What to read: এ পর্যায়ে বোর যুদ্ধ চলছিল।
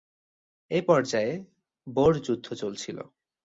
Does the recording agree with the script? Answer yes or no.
yes